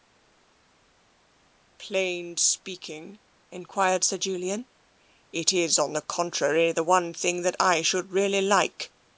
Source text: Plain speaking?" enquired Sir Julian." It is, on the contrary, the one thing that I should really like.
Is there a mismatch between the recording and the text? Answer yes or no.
no